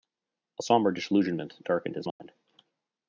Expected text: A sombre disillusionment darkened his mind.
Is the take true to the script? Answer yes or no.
yes